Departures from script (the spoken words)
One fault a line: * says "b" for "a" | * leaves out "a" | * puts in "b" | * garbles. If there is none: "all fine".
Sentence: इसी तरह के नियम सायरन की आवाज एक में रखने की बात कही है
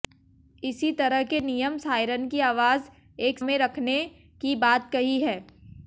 all fine